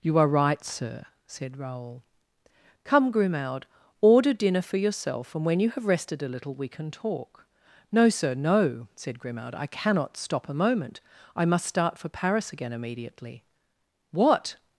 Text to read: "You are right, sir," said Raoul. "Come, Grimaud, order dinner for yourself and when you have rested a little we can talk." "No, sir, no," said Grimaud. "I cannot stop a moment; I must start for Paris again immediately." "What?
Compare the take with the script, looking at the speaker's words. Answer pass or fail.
pass